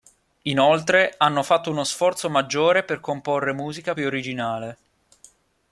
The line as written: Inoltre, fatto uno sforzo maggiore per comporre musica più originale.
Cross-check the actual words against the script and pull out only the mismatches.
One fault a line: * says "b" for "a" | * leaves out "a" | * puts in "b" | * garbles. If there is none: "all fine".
* puts in "hanno"